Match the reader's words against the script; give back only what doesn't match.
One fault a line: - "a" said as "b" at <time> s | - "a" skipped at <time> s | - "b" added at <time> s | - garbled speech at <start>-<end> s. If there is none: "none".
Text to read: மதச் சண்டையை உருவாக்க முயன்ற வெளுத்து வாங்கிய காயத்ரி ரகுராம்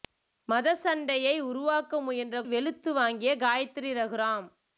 none